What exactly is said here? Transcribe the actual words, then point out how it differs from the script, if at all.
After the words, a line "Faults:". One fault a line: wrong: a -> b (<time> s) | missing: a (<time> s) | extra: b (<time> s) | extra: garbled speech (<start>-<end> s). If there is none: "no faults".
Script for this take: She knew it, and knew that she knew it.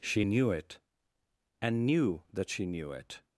She knew it, and knew that she knew it.
Faults:
no faults